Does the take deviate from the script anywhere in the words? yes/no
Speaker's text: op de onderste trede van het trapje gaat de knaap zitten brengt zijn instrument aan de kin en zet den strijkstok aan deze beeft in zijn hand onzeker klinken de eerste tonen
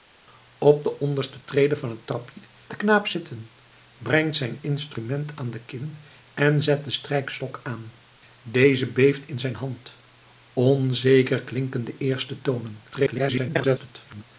yes